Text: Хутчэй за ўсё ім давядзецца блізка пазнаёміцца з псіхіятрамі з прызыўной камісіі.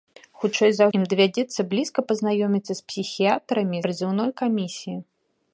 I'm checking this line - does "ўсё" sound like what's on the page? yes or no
no